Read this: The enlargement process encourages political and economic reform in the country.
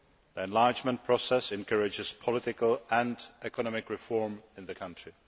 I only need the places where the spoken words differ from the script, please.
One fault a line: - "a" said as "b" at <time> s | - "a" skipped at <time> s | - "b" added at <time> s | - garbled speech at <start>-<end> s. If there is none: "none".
none